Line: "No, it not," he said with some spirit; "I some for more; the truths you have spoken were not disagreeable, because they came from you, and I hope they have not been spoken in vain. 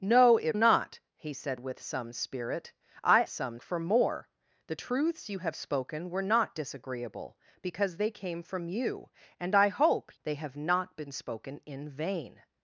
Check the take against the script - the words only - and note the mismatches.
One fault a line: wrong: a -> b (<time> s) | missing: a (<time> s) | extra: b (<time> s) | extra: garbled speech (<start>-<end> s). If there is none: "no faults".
no faults